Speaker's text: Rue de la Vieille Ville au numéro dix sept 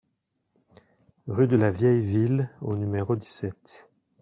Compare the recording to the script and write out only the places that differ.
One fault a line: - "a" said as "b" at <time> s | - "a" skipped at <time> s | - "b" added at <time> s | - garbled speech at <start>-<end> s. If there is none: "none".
none